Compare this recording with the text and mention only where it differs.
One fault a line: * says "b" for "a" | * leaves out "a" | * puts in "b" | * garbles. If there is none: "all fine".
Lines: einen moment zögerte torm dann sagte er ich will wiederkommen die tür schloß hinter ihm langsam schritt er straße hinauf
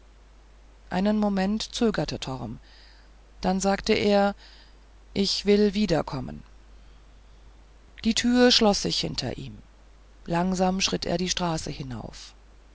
* puts in "sich"
* puts in "die"